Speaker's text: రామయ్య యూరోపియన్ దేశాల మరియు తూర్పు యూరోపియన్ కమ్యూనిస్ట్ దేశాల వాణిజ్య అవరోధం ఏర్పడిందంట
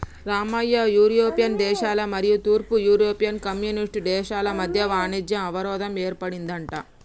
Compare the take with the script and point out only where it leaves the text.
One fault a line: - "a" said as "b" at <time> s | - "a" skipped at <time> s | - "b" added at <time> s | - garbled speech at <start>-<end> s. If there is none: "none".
- "మధ్య" added at 4.6 s